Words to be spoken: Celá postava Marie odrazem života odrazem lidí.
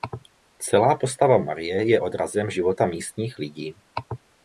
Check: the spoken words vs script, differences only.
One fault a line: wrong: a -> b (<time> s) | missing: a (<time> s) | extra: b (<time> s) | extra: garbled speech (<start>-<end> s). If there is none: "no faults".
extra: je (1.9 s)
wrong: odrazem -> místních (2.9 s)